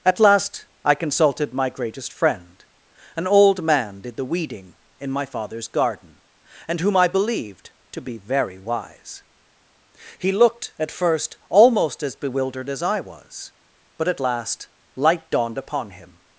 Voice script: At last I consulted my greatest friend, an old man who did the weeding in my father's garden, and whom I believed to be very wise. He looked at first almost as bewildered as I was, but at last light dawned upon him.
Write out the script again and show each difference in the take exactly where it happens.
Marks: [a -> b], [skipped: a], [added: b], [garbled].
At last I consulted my greatest friend, an old man [skipped: who] did the weeding in my father's garden, and whom I believed to be very wise. He looked at first almost as bewildered as I was, but at last light dawned upon him.